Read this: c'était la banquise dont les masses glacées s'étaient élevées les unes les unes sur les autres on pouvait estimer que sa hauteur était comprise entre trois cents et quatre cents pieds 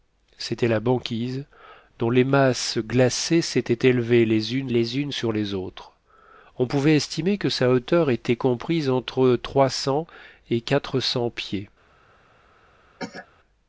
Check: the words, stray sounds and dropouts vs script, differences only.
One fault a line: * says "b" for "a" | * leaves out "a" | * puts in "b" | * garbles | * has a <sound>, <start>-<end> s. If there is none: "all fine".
* has a cough, 13.0-13.3 s